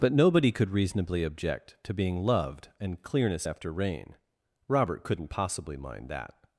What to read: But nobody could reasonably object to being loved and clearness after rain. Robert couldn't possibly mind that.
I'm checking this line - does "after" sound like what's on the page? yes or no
yes